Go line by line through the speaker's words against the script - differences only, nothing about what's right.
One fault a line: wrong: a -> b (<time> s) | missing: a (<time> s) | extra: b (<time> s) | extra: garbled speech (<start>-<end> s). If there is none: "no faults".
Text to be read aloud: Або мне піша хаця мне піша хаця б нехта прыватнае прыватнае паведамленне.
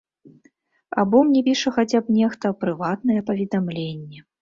missing: мне піша хаця (2.0 s)
missing: прыватнае (3.2 s)